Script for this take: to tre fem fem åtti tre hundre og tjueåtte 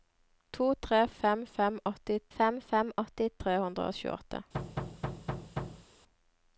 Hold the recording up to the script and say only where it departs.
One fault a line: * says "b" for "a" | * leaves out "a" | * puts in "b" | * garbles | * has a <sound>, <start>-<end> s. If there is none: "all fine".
* puts in "fem fem åtti"
* has a thud, 4.5-5.9 s